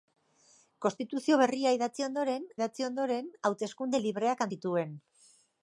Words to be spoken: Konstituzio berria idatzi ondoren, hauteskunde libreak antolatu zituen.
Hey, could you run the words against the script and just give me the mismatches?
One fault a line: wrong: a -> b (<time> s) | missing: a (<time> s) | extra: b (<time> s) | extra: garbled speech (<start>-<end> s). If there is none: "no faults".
extra: idatzi ondoren (2.6 s)
missing: antolatu (4.5 s)